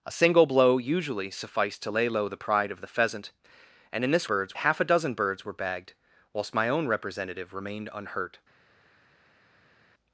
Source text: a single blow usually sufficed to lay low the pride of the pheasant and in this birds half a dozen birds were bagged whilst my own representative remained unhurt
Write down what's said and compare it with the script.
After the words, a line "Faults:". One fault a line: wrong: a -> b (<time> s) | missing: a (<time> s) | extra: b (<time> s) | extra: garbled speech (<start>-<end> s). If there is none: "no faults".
a single blow usually sufficed to lay low the pride of the pheasant and in this birds half a dozen birds were bagged whilst my own representative remained unhurt
Faults:
no faults